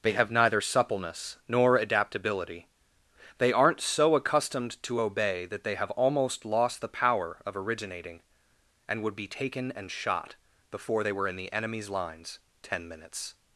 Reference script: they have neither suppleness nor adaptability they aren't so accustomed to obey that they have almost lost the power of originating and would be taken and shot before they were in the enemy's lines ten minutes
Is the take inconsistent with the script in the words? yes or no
no